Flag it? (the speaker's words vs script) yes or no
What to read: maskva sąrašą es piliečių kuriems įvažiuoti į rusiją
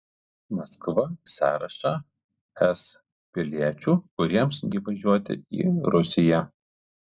no